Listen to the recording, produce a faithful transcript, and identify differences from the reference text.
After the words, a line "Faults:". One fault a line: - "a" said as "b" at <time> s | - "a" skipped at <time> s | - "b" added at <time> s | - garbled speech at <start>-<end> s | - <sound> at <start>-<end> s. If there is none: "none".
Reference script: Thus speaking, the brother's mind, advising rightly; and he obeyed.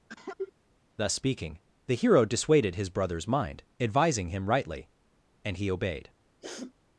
Thus speaking, the hero dissuaded his brother's mind, advising him rightly; and he obeyed.
Faults:
- cough at 0.1-0.5 s
- "hero dissuaded his" added at 1.9 s
- "him" added at 4.3 s
- sniff at 6.4-6.7 s